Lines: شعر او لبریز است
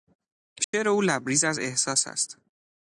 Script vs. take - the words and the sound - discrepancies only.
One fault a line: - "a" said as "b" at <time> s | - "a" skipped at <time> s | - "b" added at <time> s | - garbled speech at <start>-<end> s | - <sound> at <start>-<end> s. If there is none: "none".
- dropout at 0.6-0.7 s
- "از احساس" added at 1.4 s